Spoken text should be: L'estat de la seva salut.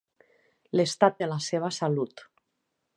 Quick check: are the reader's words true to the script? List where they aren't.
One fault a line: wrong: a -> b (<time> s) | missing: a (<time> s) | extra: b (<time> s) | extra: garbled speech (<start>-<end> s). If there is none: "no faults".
no faults